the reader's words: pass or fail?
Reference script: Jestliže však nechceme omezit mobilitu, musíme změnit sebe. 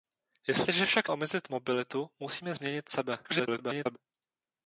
fail